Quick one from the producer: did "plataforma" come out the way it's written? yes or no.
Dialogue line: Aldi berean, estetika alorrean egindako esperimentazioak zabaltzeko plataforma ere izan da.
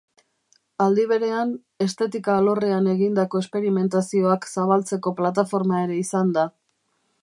yes